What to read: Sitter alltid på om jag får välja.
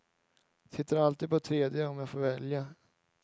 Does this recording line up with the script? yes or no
no